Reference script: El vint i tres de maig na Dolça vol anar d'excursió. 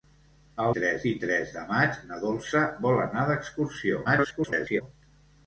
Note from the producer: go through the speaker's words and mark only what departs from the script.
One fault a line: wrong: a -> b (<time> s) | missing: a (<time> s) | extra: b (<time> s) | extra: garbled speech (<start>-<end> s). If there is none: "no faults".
wrong: vint -> tres (0.8 s)
extra: garbled speech (4.0-4.8 s)